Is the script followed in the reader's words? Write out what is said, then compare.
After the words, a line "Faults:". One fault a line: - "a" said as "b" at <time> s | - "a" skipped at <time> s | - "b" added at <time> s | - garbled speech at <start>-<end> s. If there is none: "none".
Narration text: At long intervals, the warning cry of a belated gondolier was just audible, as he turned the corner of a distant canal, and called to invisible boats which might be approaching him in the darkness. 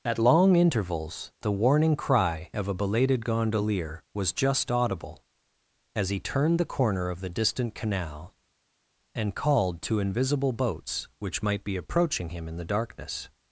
At long intervals, the warning cry of a belated gondolier was just audible, as he turned the corner of the distant canal, and called to invisible boats which might be approaching him in the darkness.
Faults:
- "a" said as "the" at 7.2 s